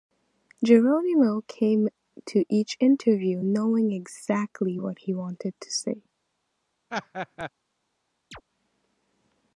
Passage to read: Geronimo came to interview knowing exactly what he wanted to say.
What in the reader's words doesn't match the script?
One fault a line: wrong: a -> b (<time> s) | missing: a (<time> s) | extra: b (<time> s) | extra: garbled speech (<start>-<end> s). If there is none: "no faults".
extra: each (2.5 s)